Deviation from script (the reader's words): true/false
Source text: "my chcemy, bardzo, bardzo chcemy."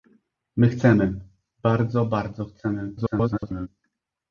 true